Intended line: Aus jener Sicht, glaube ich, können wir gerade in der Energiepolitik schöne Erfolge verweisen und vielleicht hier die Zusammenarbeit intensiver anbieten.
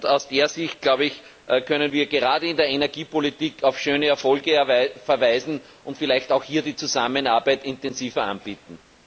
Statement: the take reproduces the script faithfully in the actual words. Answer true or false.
false